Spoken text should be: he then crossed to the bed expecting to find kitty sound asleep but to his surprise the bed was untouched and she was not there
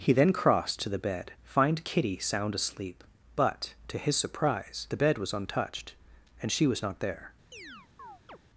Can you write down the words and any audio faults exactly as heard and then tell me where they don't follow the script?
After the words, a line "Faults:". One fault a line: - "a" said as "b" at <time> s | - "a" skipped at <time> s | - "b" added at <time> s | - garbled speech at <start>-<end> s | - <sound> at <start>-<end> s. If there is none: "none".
he then crossed to the bed find kitty sound asleep but to his surprise the bed was untouched and she was not there
Faults:
- "expecting to" skipped at 1.3 s
- chirp at 7.5-8.4 s